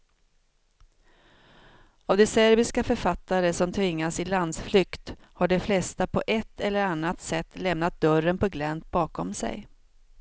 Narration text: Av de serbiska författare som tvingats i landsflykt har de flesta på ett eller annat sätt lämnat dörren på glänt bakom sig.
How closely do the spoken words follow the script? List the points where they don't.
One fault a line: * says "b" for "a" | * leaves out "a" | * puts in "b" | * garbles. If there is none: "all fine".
all fine